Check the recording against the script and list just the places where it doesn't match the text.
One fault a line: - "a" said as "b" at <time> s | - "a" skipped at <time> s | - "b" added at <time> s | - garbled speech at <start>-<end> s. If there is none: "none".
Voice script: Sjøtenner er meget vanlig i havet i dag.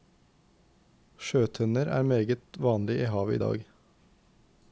none